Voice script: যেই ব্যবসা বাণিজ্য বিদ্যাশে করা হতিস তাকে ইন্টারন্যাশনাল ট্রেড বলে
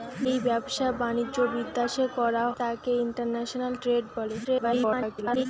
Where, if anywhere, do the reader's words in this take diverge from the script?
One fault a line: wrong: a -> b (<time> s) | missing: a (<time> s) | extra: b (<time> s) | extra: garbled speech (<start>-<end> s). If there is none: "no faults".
missing: হতিস (2.4 s)
extra: garbled speech (4.4-5.5 s)